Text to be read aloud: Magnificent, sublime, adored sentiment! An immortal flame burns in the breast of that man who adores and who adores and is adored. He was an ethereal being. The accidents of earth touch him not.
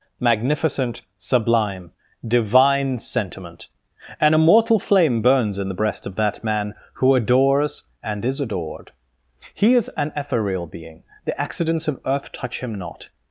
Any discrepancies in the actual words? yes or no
yes